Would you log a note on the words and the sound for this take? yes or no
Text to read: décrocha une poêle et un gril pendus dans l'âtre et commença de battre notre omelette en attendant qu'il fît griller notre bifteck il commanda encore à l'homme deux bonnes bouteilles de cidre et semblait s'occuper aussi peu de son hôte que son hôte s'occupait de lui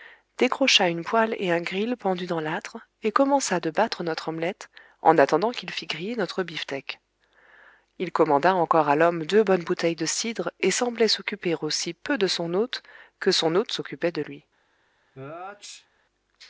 yes